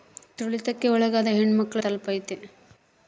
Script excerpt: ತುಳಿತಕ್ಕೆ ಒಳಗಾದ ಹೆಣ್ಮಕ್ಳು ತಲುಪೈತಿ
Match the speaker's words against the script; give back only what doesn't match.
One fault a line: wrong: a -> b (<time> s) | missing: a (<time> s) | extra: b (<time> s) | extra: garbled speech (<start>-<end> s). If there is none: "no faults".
no faults